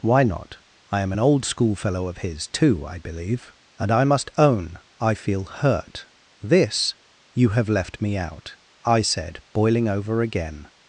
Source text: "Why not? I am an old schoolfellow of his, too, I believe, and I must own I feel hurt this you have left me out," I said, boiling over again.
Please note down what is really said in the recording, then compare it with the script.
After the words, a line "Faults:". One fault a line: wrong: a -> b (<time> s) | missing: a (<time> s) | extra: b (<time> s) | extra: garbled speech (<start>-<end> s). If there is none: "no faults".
"Why not? I am an old schoolfellow of his, too, I believe, and I must own I feel hurt this you have left me out," I said, boiling over again.
Faults:
no faults